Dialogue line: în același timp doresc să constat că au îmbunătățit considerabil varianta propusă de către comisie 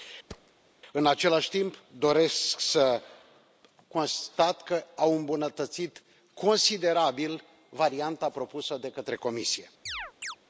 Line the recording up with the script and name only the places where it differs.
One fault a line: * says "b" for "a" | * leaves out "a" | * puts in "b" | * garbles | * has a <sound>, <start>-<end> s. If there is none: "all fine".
* has a thud, 0.3-0.5 s
* has a chirp, 9.9-10.4 s